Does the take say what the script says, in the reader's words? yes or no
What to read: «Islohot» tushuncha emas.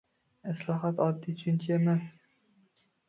no